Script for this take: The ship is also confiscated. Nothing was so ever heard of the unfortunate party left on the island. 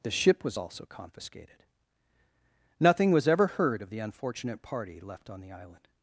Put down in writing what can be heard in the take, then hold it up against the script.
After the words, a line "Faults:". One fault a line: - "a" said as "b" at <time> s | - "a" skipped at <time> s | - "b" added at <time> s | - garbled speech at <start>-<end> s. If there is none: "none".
The ship was also confiscated. Nothing was ever heard of the unfortunate party left on the island.
Faults:
- "is" said as "was" at 0.4 s
- "so" skipped at 3.3 s